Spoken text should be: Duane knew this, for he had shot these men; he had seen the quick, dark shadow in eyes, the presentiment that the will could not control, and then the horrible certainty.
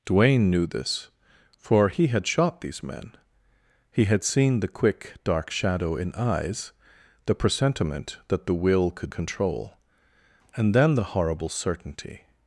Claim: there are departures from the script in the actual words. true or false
true